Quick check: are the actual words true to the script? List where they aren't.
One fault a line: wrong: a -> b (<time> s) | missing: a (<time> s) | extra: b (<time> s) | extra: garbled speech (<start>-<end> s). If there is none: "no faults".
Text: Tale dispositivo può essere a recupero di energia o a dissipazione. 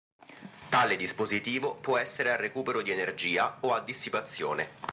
no faults